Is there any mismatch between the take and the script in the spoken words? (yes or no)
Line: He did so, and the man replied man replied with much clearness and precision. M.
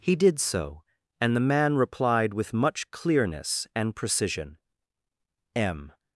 yes